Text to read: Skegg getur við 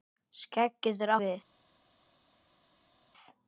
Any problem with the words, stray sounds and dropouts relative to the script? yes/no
no